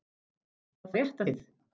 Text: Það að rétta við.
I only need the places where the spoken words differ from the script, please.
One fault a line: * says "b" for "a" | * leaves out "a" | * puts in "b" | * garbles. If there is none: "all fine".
all fine